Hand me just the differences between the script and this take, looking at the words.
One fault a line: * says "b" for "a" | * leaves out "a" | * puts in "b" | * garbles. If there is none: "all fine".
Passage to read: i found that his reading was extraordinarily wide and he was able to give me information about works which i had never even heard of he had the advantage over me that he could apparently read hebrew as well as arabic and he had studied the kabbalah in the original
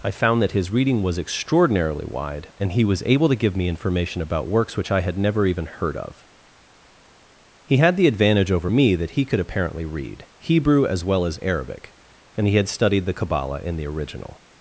all fine